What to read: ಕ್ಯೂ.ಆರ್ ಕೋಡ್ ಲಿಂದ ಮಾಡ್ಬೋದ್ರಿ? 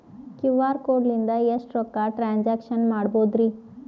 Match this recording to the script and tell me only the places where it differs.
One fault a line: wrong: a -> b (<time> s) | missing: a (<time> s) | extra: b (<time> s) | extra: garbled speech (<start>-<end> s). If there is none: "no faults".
extra: ಎಷ್ಟ ರೊಕ್ಕ ಟ್ರಾನ್ಸ್ಯಾಕ್ಷನ (1.5 s)